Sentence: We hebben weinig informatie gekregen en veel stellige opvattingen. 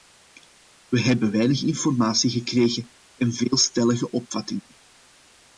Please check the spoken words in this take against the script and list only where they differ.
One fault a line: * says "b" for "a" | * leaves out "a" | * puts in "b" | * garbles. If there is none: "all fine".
all fine